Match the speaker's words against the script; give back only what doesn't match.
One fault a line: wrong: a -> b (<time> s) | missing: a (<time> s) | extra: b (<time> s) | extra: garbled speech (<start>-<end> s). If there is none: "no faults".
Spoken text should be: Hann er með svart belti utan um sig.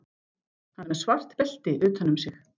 no faults